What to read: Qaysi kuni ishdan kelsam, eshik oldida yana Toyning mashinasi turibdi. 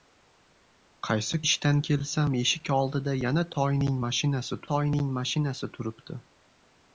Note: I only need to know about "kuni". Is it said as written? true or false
false